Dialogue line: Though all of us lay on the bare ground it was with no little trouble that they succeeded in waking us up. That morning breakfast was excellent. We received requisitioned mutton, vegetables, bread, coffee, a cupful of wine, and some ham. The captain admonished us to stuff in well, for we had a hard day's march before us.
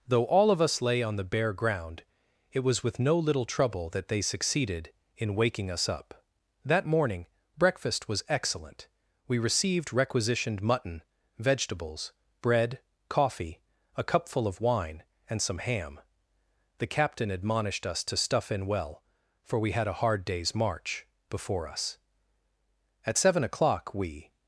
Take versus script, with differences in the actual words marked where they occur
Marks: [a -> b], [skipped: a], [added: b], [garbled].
Though all of us lay on the bare ground it was with no little trouble that they succeeded in waking us up. That morning breakfast was excellent. We received requisitioned mutton, vegetables, bread, coffee, a cupful of wine, and some ham. The captain admonished us to stuff in well, for we had a hard day's march before us. [added: At seven o'clock we]